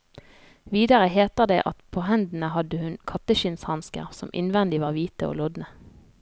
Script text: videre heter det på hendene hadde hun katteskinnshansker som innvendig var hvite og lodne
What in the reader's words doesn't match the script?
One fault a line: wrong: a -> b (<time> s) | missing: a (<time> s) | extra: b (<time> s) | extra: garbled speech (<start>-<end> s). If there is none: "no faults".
extra: at (1.7 s)